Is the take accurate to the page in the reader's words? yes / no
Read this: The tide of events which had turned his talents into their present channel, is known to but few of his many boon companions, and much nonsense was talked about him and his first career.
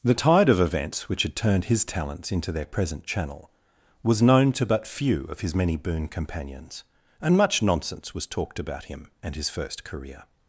no